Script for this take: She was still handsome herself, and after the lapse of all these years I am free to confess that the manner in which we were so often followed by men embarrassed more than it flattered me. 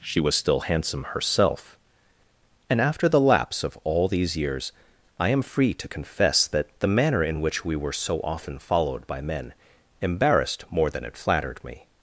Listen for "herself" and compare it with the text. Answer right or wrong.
right